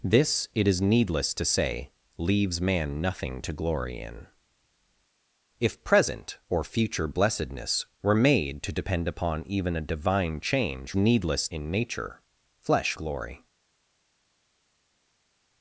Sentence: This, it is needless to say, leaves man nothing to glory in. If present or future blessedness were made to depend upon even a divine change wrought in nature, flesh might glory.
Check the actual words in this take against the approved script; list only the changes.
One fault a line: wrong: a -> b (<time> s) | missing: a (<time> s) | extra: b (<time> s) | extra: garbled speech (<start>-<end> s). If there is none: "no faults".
wrong: wrought -> needless (11.0 s)
missing: might (13.0 s)